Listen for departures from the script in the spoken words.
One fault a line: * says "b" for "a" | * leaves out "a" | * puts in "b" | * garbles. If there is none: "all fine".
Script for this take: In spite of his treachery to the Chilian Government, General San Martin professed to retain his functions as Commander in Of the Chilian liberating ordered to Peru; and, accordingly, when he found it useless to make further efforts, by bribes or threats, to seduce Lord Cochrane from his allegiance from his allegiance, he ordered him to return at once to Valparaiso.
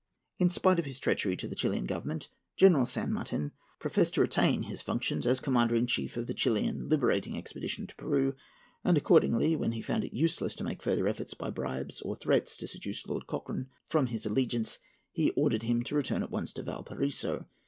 * puts in "Chief"
* says "expedition" for "ordered"
* leaves out "from his allegiance"